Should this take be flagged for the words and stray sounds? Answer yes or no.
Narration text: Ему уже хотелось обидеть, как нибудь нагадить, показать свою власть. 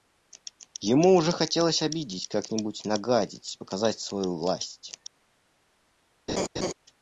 yes